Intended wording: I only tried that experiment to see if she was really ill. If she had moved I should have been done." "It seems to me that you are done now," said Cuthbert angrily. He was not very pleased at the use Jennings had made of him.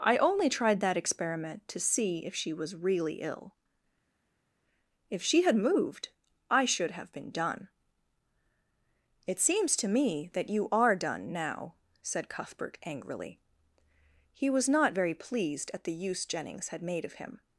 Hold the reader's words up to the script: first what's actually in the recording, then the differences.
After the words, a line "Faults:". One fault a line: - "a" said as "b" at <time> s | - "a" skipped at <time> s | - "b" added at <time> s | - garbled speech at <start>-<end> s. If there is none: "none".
I only tried that experiment to see if she was really ill. If she had moved I should have been done." "It seems to me that you are done now," said Cuthbert angrily. He was not very pleased at the use Jennings had made of him.
Faults:
none